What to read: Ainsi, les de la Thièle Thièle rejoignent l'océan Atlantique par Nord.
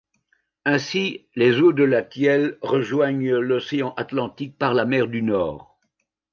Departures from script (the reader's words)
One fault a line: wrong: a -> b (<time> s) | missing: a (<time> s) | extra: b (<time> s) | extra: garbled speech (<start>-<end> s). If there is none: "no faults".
extra: eaux (1.6 s)
missing: Thièle (2.6 s)
extra: la mer du (4.7 s)